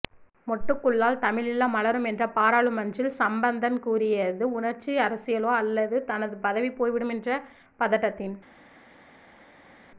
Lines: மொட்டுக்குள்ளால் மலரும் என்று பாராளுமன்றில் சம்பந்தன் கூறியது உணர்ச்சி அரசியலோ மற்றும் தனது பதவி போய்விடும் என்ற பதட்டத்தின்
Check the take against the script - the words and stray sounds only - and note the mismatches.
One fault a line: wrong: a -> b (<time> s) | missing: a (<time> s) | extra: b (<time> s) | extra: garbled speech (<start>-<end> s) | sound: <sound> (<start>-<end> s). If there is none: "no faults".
extra: தமிழீழம் (1.2 s)
wrong: மற்றும் -> அல்லது (5.6 s)